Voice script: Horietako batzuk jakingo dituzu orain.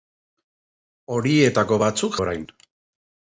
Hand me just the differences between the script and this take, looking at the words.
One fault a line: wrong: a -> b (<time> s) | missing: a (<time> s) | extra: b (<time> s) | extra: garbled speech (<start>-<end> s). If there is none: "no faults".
missing: jakingo dituzu (2.2 s)